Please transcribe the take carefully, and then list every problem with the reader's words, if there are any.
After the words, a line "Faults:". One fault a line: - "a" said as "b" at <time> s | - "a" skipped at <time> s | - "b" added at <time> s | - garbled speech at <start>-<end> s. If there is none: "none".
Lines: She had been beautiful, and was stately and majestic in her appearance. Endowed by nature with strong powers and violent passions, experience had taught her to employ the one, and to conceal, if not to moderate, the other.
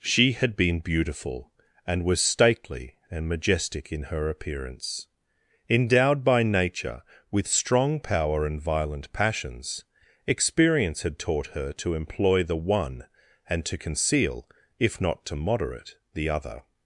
She had been beautiful, and was stately and majestic in her appearance. Endowed by nature with strong power and violent passions, experience had taught her to employ the one, and to conceal, if not to moderate, the other.
Faults:
- "powers" said as "power" at 8.0 s